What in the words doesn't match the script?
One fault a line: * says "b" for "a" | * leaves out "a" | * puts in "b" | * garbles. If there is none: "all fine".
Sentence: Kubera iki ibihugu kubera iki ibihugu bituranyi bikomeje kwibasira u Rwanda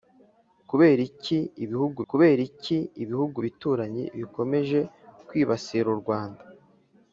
all fine